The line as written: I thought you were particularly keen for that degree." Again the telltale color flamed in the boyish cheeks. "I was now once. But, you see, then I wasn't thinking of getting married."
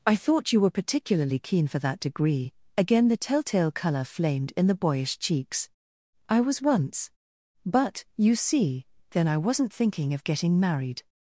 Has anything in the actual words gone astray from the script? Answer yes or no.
yes